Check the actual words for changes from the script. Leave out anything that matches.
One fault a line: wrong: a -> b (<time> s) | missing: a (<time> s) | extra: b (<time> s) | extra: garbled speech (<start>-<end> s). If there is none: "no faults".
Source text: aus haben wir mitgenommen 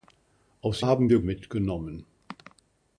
no faults